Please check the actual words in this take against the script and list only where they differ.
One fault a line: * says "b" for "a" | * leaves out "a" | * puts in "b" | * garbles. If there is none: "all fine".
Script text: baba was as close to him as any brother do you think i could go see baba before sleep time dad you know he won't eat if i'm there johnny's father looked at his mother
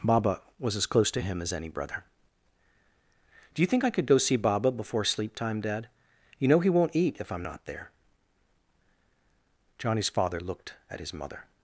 * puts in "not"